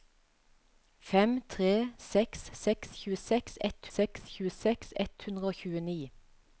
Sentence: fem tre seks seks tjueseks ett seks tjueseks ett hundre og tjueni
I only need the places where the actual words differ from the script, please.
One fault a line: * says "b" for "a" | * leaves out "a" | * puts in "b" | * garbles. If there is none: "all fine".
all fine